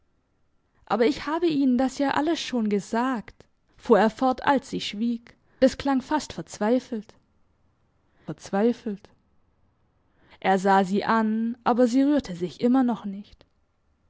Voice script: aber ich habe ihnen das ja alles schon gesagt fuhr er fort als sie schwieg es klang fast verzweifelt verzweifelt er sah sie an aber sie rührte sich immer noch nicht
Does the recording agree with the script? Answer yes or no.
yes